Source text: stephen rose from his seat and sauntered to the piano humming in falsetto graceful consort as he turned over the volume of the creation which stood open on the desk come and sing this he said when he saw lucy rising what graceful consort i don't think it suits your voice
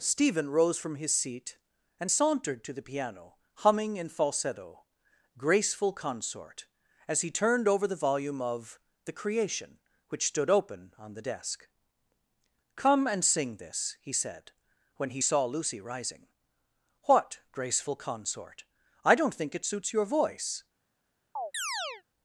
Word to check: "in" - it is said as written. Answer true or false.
true